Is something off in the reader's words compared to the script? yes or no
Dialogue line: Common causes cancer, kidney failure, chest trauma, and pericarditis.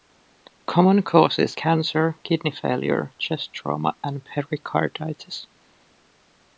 no